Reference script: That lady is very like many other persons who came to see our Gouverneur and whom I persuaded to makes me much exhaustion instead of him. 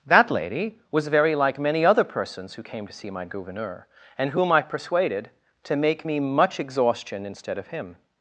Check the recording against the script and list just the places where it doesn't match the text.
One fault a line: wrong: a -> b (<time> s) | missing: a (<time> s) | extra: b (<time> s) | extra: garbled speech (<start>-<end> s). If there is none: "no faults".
wrong: is -> was (0.9 s)
wrong: our -> my (3.1 s)
wrong: makes -> make (5.7 s)